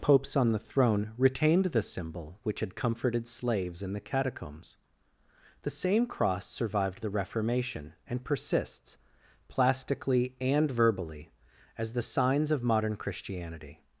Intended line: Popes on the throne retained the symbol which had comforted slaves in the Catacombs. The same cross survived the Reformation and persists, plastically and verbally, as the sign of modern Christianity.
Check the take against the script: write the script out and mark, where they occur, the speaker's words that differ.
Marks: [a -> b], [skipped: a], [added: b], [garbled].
Popes on the throne retained the symbol which had comforted slaves in the Catacombs. The same cross survived the Reformation and persists, plastically and verbally, as the [sign -> signs] of modern Christianity.